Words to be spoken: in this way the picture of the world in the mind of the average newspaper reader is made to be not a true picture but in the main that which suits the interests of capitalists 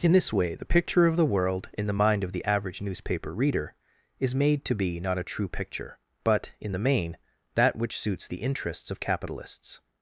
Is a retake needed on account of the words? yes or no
no